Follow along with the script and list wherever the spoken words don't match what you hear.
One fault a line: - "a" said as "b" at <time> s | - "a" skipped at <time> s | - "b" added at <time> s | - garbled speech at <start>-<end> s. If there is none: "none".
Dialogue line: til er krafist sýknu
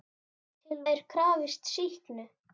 none